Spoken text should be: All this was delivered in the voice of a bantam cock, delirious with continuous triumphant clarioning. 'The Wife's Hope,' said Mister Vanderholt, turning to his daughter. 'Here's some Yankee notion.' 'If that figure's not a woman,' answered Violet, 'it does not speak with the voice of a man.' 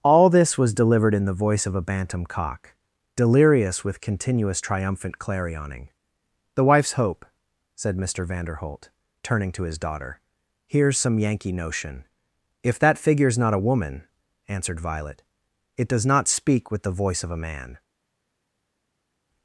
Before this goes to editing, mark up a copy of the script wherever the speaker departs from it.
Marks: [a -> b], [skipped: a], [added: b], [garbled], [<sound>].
All this was delivered in the voice of a bantam cock, delirious with continuous triumphant clarioning. 'The Wife's Hope,' said Mister Vanderholt, turning to his daughter. 'Here's some Yankee notion.' 'If that figure's not a woman,' answered Violet, 'it does not speak with the voice of a man.'